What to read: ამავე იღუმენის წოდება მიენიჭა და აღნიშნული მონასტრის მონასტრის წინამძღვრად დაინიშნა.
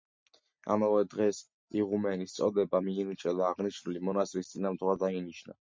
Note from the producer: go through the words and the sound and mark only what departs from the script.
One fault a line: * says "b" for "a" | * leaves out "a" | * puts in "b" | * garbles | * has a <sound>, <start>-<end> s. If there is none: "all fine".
* puts in "დღეს"
* leaves out "მონასტრის"